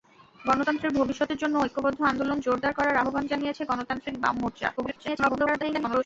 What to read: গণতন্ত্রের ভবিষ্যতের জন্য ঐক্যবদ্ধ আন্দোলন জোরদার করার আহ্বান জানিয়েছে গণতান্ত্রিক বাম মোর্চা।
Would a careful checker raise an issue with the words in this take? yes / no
yes